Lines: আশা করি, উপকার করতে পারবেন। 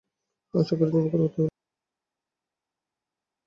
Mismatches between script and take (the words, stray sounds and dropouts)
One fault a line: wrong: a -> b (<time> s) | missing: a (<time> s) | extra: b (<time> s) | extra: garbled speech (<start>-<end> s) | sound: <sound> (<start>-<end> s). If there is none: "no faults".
no faults